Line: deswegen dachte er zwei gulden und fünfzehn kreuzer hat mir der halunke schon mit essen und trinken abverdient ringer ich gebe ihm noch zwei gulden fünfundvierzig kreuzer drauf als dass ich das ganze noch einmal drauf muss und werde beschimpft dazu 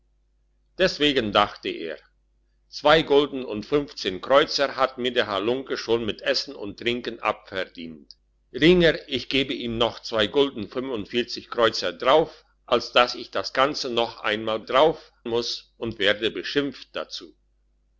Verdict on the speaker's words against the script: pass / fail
pass